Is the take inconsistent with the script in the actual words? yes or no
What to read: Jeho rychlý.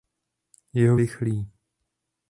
no